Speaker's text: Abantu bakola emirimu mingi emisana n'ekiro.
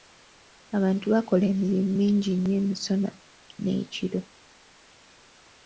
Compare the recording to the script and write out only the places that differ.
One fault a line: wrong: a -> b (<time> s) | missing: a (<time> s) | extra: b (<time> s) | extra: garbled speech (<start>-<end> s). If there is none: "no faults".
extra: nnyo (2.3 s)